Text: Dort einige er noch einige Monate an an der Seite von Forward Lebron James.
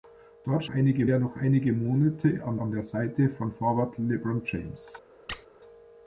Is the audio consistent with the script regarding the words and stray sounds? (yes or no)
no